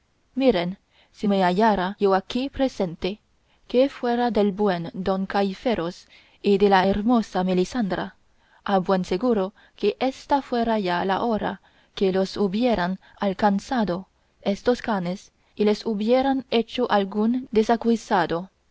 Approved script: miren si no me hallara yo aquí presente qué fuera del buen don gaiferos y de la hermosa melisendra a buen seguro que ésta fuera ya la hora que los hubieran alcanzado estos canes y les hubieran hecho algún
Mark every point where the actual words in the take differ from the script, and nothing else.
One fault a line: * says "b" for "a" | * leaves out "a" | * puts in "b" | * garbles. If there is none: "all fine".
* leaves out "no"